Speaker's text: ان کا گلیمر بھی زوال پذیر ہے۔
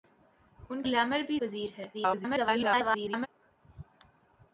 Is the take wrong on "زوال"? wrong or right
wrong